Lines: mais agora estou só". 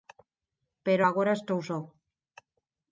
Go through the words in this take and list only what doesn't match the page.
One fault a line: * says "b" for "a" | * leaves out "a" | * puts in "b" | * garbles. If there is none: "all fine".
* says "pero" for "mais"